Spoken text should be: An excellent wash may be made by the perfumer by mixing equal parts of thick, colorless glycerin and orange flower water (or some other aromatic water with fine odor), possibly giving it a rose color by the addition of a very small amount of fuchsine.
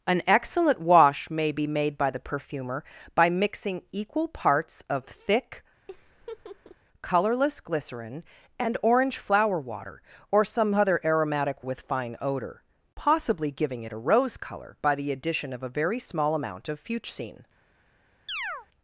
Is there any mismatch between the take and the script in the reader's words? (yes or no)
yes